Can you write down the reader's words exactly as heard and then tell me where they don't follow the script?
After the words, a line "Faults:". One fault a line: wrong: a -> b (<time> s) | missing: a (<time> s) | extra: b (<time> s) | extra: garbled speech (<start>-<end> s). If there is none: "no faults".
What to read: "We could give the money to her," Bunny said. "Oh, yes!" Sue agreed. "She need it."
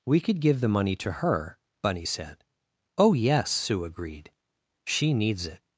"We could give the money to her," Bunny said. "Oh, yes!" Sue agreed. "She needs it."
Faults:
wrong: need -> needs (5.1 s)